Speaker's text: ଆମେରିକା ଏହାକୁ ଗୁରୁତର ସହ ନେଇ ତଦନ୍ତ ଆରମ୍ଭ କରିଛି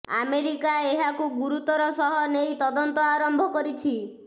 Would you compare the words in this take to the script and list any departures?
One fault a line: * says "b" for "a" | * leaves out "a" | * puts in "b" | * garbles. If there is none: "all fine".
all fine